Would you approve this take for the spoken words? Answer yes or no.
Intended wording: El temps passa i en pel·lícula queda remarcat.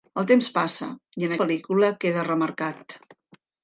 yes